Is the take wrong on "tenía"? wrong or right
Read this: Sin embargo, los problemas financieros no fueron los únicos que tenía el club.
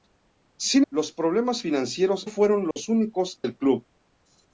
wrong